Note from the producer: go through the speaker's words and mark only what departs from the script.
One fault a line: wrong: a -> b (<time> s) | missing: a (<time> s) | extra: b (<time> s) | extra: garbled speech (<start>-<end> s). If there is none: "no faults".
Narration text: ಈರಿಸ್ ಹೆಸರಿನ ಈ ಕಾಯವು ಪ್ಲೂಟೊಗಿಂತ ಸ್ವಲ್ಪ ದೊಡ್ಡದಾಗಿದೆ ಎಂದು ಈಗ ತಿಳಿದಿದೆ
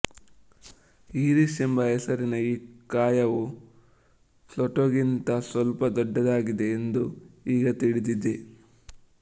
extra: ಎಂಬ (1.6 s)